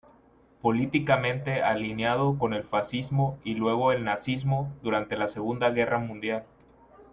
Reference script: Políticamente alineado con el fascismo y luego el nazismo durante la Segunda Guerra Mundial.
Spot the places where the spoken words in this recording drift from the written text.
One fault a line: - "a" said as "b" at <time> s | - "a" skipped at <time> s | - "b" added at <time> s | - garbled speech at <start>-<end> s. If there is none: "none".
none